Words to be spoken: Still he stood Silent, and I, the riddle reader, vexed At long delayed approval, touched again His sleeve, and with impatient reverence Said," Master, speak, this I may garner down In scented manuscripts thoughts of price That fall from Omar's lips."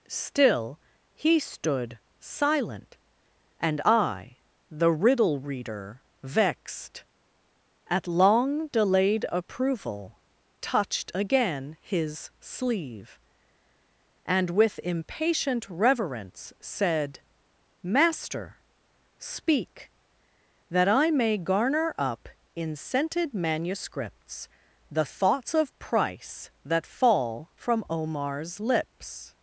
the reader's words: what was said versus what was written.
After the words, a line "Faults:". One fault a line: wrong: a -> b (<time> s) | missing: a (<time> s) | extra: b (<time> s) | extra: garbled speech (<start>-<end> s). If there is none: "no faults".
Still he stood Silent, and I, the riddle reader, vexed At long delayed approval, touched again His sleeve, and with impatient reverence Said," Master, speak, that I may garner up In scented manuscripts the thoughts of price That fall from Omar's lips."
Faults:
wrong: this -> that (20.7 s)
wrong: down -> up (22.0 s)
extra: the (24.9 s)